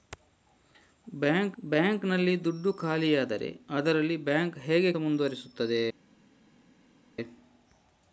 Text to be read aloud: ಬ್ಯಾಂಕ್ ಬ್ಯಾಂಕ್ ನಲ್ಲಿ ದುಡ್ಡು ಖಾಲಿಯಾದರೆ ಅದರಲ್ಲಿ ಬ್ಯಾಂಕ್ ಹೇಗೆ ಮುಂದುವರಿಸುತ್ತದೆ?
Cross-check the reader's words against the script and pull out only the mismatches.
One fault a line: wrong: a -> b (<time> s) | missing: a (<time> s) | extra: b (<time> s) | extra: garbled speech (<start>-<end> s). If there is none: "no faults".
no faults